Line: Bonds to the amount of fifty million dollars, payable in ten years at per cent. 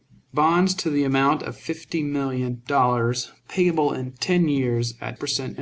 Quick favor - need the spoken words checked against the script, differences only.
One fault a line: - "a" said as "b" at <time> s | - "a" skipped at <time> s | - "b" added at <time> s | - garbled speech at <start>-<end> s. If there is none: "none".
none